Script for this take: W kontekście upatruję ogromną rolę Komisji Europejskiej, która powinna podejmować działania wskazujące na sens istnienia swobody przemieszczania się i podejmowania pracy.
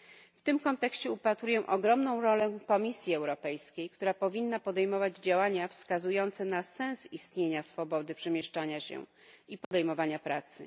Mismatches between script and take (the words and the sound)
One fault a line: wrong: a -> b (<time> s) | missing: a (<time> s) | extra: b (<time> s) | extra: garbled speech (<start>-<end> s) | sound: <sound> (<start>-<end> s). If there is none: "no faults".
extra: tym (0.4 s)
sound: dropout (9.6-9.7 s)